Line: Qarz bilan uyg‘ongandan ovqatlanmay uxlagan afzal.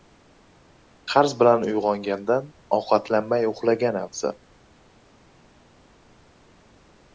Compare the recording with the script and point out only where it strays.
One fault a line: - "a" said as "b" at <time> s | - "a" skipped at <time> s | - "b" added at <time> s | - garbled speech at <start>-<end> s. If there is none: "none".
none